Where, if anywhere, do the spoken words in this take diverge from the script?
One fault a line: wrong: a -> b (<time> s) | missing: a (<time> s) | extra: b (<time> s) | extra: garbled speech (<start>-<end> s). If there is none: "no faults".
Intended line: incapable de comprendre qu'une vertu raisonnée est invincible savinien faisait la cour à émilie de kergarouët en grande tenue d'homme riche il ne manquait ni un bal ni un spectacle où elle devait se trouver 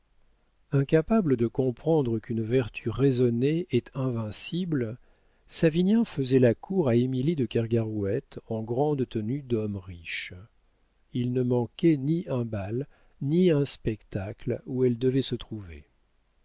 no faults